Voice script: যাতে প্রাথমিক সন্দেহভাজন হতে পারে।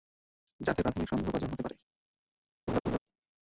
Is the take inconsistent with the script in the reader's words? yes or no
no